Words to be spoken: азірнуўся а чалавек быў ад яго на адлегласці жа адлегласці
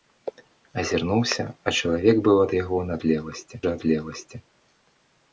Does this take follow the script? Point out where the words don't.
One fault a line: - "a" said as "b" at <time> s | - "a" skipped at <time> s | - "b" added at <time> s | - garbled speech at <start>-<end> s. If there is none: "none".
none